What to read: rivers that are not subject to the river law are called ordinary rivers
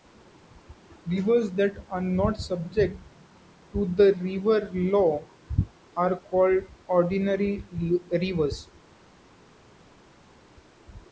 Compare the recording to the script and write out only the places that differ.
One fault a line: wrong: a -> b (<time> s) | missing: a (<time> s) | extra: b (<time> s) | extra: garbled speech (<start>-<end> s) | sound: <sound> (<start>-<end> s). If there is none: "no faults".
no faults